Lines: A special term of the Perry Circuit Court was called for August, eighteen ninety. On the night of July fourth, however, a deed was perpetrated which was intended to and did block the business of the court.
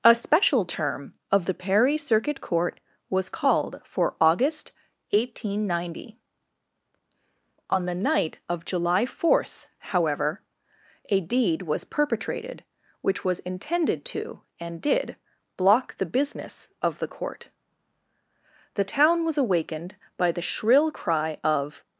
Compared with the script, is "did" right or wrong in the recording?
right